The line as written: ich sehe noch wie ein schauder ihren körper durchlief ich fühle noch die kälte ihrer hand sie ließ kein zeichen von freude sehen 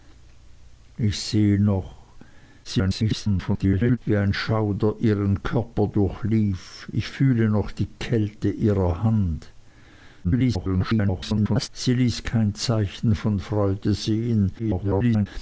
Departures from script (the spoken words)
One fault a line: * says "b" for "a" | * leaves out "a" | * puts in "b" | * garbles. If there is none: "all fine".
* garbles
* garbles
* garbles